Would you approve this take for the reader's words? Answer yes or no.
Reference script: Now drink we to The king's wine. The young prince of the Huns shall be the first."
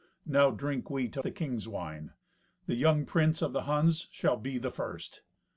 yes